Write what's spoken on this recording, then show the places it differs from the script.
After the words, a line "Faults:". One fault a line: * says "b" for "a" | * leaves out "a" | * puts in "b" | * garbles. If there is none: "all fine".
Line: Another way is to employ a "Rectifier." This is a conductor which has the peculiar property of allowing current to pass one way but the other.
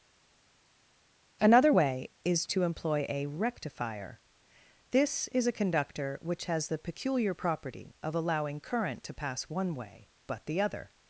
Another way is to employ a "Rectifier." This is a conductor which has the peculiar property of allowing current to pass one way but the other.
Faults:
all fine